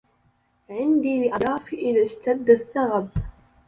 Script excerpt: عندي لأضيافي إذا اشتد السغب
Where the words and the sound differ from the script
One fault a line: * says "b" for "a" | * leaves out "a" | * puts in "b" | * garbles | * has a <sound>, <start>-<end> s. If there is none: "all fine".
all fine